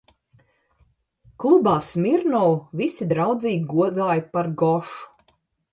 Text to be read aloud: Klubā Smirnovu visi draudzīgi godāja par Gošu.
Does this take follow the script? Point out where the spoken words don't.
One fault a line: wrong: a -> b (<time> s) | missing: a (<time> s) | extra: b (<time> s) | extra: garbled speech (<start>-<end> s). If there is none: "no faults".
no faults